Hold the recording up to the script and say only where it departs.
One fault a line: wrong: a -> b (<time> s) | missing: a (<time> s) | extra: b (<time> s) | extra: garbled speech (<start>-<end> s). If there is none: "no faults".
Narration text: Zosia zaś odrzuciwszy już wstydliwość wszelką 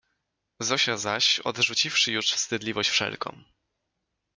no faults